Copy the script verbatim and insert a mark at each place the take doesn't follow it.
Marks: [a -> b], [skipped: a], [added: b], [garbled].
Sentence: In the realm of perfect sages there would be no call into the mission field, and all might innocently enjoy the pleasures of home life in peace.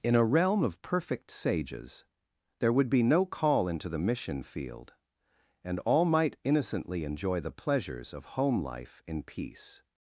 In [the -> a] realm of perfect sages there would be no call into the mission field, and all might innocently enjoy the pleasures of home life in peace.